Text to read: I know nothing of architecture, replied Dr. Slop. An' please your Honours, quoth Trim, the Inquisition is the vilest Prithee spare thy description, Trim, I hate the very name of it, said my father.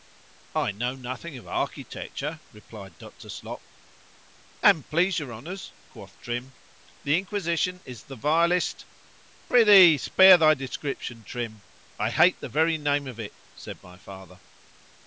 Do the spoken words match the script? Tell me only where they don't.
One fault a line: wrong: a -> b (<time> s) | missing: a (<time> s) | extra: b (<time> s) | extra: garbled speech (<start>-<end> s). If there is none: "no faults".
no faults